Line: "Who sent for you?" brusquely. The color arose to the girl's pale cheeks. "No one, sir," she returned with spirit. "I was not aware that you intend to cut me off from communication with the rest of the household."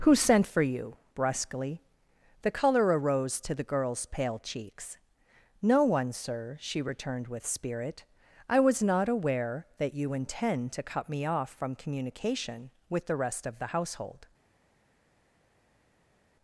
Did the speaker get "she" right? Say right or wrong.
right